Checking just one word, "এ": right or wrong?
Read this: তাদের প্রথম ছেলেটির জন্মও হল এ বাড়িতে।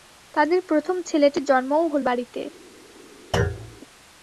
wrong